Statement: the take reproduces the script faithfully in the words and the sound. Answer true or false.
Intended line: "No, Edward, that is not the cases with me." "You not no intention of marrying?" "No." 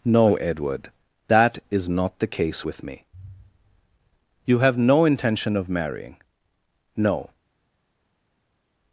false